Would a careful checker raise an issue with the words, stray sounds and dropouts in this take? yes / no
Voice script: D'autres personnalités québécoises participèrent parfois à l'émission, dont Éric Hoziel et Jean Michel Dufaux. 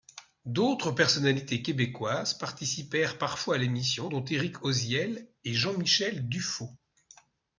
no